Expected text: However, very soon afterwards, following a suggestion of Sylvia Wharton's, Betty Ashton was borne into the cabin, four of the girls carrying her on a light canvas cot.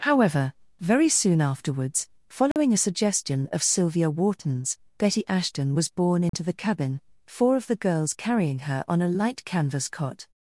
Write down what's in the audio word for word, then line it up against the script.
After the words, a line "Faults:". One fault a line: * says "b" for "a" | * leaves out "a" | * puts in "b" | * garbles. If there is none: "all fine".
However, very soon afterwards, following a suggestion of Sylvia Wharton's, Betty Ashton was borne into the cabin, four of the girls carrying her on a light canvas cot.
Faults:
all fine